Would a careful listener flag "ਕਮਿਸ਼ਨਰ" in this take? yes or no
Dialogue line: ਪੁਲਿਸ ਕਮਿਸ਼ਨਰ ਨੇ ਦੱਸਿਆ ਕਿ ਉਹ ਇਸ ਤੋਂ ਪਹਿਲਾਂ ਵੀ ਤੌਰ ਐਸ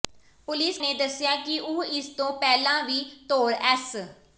yes